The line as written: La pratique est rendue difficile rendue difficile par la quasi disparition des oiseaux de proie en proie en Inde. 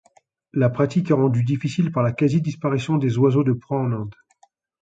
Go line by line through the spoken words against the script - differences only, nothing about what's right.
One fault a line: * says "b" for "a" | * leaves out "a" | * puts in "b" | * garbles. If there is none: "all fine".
* leaves out "rendue difficile"
* leaves out "proie en"